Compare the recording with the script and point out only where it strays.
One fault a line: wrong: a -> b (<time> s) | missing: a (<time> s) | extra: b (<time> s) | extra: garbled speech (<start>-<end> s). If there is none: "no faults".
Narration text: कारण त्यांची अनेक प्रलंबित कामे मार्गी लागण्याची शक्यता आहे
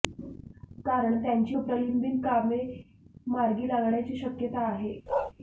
missing: अनेक (1.6 s)